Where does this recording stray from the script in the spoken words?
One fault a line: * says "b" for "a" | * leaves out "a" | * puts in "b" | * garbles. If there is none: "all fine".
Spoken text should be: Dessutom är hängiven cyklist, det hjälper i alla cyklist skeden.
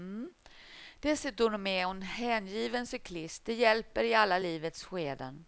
* puts in "hon"
* says "livets" for "cyklist"